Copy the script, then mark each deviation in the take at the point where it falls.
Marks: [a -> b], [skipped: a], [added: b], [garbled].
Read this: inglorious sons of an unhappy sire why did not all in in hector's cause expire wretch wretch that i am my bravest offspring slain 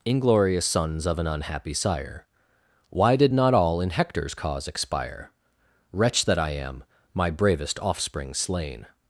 inglorious sons of an unhappy sire why did not all in [skipped: in] hector's cause expire wretch [skipped: wretch] that i am my bravest offspring slain